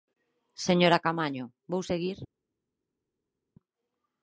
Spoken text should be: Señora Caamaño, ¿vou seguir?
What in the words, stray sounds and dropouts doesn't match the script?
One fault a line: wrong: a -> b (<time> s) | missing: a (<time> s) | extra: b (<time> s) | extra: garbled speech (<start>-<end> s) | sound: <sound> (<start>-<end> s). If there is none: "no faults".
no faults